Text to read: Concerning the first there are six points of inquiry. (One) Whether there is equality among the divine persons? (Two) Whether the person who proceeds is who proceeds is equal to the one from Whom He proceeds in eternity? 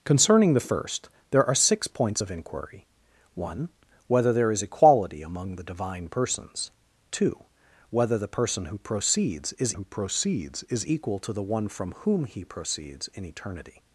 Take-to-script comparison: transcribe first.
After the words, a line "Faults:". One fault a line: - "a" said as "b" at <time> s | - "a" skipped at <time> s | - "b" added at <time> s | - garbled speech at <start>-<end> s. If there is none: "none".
Concerning the first there are six points of inquiry. (One) Whether there is equality among the divine persons? (Two) Whether the person who proceeds is who proceeds is equal to the one from Whom He proceeds in eternity?
Faults:
none